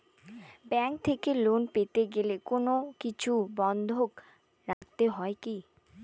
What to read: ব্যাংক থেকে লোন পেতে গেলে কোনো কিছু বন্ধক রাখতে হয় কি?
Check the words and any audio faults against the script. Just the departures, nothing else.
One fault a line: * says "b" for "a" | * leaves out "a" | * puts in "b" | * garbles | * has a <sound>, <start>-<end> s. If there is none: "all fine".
* has a dropout, 4.7-4.8 s